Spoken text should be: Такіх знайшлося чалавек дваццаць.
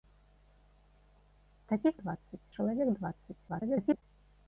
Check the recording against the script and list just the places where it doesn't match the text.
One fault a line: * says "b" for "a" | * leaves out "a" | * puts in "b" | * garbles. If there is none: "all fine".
* says "дваццаць" for "знайшлося"
* garbles